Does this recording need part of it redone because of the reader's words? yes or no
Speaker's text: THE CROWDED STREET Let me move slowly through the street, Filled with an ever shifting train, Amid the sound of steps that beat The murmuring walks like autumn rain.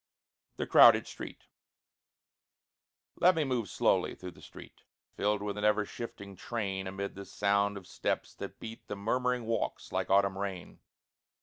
no